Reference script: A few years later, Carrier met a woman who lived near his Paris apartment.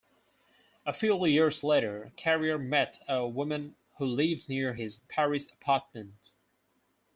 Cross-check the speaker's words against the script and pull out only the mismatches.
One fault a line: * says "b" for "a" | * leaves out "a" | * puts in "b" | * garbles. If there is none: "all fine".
all fine